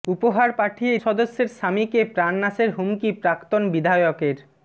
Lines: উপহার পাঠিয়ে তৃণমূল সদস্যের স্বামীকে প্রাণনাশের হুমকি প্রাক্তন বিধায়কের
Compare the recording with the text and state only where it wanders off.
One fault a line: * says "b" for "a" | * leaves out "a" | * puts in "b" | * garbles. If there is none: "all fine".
* leaves out "তৃণমূল"